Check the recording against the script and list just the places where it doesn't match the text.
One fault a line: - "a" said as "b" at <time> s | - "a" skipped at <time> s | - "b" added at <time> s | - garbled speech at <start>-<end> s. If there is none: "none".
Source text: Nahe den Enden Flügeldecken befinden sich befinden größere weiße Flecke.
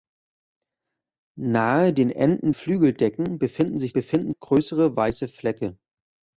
none